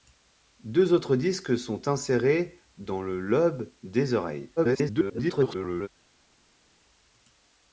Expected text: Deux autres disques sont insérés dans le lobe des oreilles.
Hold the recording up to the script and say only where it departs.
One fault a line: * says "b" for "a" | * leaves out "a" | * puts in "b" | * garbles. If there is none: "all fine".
* garbles